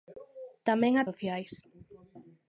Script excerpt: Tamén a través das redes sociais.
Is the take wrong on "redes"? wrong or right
wrong